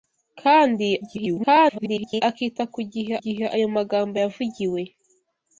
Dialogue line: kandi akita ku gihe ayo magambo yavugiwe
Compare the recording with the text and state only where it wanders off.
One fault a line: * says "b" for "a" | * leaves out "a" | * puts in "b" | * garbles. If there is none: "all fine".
* garbles
* puts in "gihe"